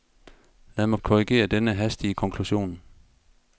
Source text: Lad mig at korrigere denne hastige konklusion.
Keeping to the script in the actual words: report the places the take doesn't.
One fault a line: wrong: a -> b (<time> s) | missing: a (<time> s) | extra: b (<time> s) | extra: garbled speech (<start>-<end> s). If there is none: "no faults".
no faults